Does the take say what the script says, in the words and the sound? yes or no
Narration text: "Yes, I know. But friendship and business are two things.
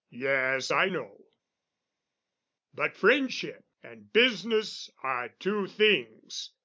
yes